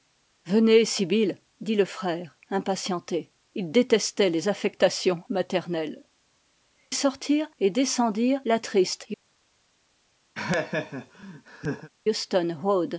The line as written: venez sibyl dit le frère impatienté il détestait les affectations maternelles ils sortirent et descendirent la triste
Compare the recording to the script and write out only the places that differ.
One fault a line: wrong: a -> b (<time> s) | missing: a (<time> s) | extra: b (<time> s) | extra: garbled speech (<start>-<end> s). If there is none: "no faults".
missing: ils (6.0 s)